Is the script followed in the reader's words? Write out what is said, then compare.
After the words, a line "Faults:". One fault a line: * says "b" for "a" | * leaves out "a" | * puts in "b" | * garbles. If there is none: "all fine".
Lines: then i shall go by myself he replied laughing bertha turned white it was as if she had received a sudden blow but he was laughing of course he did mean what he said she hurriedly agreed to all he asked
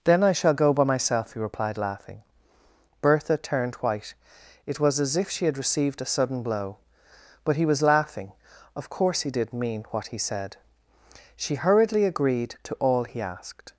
then i shall go by myself he replied laughing bertha turned white it was as if she had received a sudden blow but he was laughing of course he did mean what he said she hurriedly agreed to all he asked
Faults:
all fine